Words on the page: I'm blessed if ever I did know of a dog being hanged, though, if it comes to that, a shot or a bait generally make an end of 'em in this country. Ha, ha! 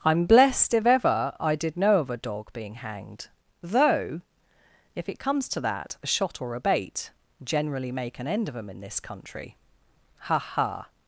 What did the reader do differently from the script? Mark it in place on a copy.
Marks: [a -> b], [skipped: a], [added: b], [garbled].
I'm blessed if ever I did know of a dog being hanged, though, if it comes to that, a shot or a bait generally make an end of 'em in this country. Ha, ha!